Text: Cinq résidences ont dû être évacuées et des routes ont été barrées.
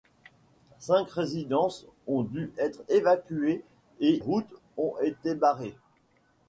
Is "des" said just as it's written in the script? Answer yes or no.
no